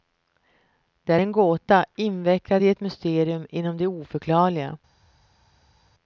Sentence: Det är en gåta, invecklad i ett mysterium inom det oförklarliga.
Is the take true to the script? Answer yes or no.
yes